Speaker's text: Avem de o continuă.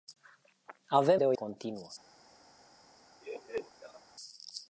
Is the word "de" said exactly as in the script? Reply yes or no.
yes